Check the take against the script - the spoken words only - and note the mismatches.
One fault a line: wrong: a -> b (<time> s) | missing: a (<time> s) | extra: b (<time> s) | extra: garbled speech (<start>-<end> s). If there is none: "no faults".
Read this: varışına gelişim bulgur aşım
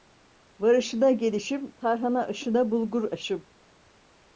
extra: tarhana aşına (1.7 s)